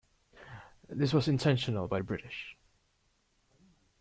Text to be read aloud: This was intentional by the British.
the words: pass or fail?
pass